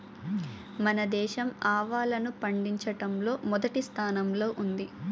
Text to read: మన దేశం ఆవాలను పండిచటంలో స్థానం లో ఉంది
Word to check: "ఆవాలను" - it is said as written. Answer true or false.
true